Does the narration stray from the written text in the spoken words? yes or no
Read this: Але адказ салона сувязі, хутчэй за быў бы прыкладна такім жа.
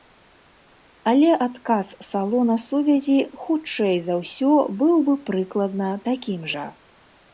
yes